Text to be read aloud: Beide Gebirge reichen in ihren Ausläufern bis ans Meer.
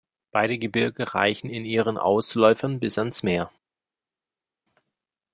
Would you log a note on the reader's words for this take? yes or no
no